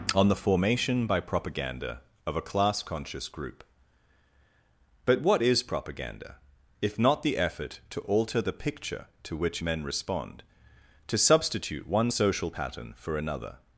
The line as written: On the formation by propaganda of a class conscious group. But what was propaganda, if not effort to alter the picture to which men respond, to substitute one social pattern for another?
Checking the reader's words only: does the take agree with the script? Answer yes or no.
no